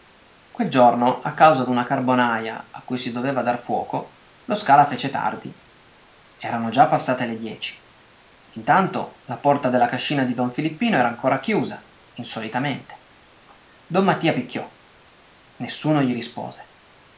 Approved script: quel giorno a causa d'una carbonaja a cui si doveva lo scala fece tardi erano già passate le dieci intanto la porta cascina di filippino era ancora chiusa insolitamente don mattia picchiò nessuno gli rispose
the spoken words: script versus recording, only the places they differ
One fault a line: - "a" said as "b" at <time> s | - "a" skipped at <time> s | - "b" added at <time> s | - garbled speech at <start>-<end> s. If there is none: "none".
- "dar fuoco" added at 3.4 s
- "della" added at 9.7 s
- "don" added at 10.3 s